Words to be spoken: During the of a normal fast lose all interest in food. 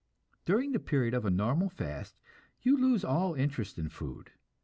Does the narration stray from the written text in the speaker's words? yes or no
yes